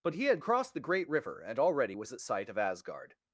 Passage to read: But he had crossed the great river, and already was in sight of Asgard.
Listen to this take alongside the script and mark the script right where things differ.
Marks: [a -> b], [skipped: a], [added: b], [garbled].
But he had crossed the great river, and already was [in -> at] sight of Asgard.